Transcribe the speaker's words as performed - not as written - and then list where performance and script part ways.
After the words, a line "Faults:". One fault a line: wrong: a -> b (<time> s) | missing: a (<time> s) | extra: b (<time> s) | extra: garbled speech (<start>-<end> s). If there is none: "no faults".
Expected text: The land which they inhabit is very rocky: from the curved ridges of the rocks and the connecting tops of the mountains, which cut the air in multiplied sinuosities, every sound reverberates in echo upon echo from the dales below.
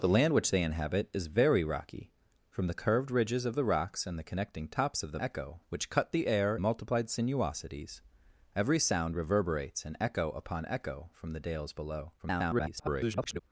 The land which they inhabit is very rocky: from the curved ridges of the rocks and the connecting tops of the echo, which cut the air multiplied sinuosities, every sound reverberates in echo upon echo from the dales below. [garbled]
Faults:
wrong: mountains -> echo (5.2 s)
missing: in (6.6 s)
extra: garbled speech (12.2-13.4 s)